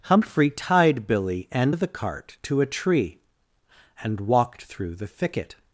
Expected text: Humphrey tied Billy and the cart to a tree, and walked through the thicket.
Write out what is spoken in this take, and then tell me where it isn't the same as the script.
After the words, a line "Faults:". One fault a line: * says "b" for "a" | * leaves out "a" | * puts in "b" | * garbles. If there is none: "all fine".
Humphrey tied Billy and the cart to a tree, and walked through the thicket.
Faults:
all fine